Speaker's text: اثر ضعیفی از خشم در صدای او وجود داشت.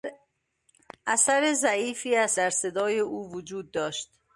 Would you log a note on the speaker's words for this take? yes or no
yes